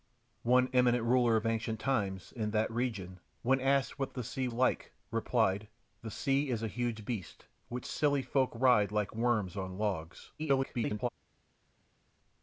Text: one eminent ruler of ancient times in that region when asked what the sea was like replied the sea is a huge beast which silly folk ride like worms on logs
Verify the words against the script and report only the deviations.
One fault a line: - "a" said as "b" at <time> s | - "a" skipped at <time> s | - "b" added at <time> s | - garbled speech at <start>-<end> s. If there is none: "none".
- "was" skipped at 4.5 s
- garbled speech at 10.4-11.1 s